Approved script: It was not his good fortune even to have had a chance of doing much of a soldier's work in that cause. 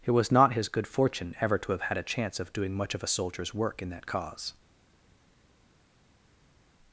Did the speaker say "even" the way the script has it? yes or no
no